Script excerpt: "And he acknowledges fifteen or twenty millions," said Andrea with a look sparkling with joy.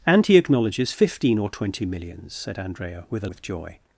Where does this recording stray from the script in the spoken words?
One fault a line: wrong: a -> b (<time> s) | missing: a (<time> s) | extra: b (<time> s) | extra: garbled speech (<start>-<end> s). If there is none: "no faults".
missing: look sparkling (3.3 s)